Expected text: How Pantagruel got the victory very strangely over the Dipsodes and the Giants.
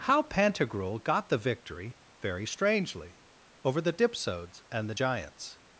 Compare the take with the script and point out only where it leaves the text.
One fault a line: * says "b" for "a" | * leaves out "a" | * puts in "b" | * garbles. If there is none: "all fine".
all fine